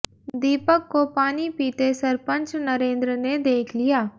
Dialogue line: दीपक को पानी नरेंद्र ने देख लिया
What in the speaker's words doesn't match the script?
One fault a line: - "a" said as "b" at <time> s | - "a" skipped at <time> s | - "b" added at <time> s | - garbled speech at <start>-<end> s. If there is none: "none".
- "पीते सरपंच" added at 1.5 s